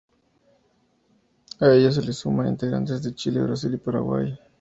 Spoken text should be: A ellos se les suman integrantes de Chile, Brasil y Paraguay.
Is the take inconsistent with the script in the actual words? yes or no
no